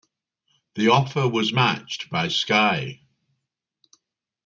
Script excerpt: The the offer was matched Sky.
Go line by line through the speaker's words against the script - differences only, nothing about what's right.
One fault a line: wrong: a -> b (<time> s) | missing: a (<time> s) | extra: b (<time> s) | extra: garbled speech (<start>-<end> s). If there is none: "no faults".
missing: the (0.9 s)
extra: by (2.1 s)